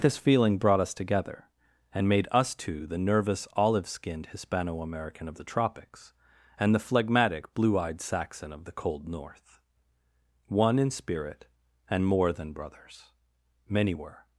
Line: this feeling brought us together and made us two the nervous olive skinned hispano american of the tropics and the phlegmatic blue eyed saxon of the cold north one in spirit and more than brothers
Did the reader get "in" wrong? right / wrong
right